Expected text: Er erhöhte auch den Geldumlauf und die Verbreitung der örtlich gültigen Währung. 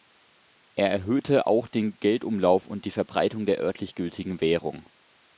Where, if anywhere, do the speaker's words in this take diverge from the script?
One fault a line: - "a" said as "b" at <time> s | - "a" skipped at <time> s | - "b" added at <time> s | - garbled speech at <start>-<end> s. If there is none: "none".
none